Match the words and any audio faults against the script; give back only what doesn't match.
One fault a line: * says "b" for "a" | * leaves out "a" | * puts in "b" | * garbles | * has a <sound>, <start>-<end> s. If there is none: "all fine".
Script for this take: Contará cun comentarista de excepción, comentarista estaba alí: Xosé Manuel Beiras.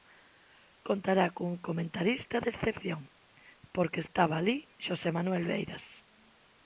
* says "porque" for "comentarista"